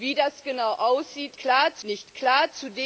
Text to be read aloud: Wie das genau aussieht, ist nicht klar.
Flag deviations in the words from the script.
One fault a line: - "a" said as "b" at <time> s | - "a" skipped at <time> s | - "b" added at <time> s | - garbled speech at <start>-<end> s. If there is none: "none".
- "ist" said as "klar" at 1.4 s